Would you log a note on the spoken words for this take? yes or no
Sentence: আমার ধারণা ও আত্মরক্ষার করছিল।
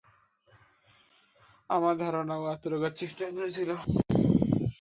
yes